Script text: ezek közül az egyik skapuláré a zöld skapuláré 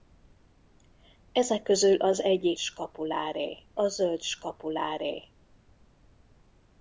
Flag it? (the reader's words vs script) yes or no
no